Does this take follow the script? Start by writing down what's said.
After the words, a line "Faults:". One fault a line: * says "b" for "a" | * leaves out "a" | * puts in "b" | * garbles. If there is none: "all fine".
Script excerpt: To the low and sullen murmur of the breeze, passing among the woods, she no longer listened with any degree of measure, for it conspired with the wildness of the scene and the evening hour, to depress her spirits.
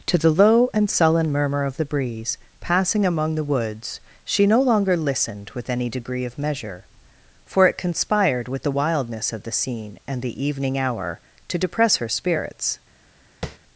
To the low and sullen murmur of the breeze, passing among the woods, she no longer listened with any degree of measure, for it conspired with the wildness of the scene and the evening hour, to depress her spirits.
Faults:
all fine